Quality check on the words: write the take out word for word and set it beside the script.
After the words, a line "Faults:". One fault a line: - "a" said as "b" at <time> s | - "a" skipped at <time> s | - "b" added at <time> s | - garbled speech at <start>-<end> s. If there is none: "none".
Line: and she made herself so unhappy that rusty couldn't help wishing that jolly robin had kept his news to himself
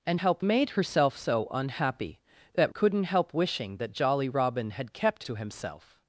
and help made herself so unhappy that couldn't help wishing that jolly robin had kept to himself
Faults:
- "she" said as "help" at 0.1 s
- "rusty" skipped at 2.7 s
- "his news" skipped at 5.2 s